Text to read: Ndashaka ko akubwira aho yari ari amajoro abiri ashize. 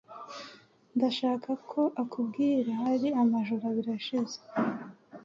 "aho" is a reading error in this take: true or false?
true